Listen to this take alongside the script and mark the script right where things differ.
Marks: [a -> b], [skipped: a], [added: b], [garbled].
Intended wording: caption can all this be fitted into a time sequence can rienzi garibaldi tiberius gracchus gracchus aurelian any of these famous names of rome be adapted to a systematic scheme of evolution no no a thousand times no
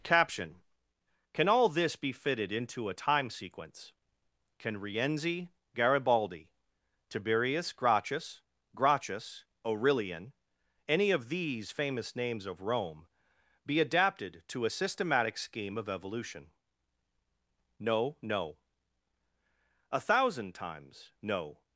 caption can all this be fitted into a time sequence can rienzi garibaldi tiberius gracchus gracchus aurelian any of these famous names of rome be adapted to a systematic scheme of evolution no no a thousand times no